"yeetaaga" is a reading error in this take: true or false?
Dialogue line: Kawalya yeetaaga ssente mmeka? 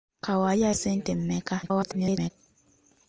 true